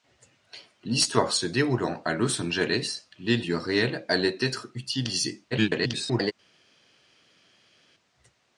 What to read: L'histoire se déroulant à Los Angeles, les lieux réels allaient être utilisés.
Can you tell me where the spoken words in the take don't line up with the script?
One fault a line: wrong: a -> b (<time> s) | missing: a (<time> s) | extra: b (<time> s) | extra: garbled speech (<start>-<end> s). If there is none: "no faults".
extra: garbled speech (5.5-6.3 s)